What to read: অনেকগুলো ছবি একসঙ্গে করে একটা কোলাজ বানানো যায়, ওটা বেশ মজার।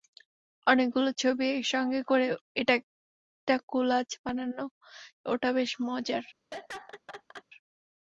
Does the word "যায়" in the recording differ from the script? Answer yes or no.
yes